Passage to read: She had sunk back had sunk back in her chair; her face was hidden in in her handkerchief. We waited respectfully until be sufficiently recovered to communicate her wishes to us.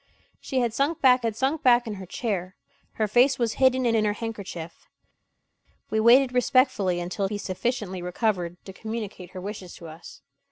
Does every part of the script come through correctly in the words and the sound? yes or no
yes